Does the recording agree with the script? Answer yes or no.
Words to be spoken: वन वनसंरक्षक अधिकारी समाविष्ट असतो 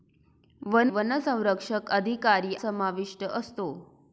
yes